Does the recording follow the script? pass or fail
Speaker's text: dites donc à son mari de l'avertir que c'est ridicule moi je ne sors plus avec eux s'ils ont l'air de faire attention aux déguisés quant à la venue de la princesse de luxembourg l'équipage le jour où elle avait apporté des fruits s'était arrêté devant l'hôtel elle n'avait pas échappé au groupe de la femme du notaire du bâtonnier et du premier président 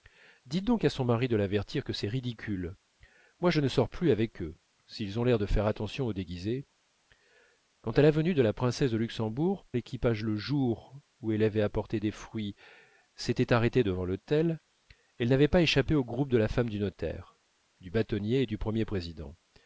pass